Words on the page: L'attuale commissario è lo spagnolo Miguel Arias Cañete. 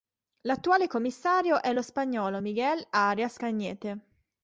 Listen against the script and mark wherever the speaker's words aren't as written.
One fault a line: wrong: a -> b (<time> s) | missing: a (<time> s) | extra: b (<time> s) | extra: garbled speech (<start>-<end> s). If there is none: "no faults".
no faults